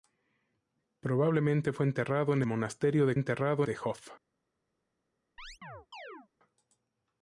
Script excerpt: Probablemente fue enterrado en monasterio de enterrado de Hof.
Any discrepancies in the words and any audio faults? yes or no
yes